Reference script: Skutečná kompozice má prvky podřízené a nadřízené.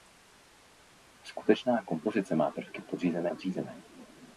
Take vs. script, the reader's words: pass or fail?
fail